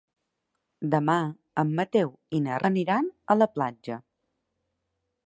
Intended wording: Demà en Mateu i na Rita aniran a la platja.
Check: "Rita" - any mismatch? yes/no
yes